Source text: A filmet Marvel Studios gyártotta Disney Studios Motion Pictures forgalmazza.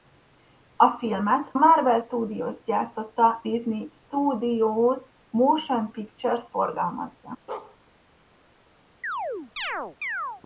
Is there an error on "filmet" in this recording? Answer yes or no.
no